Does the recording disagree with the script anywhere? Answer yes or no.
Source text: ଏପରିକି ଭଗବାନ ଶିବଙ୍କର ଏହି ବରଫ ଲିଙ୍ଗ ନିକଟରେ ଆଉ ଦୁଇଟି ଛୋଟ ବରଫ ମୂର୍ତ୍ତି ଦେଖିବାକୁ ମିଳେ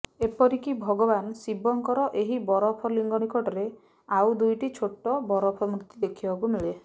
no